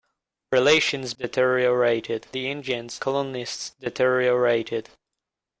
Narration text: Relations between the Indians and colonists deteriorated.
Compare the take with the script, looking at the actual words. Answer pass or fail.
fail